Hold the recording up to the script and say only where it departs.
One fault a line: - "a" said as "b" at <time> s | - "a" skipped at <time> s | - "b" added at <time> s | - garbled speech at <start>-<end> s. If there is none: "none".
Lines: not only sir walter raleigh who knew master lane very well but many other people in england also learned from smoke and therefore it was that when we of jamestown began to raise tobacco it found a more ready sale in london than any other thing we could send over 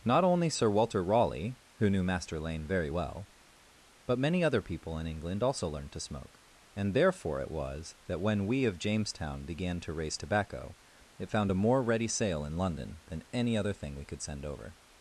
- "from" said as "to" at 5.9 s